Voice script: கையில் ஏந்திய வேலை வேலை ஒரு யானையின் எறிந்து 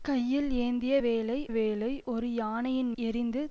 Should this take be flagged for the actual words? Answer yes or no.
no